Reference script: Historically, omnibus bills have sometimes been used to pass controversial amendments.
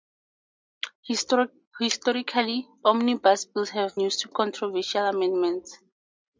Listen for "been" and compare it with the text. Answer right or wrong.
wrong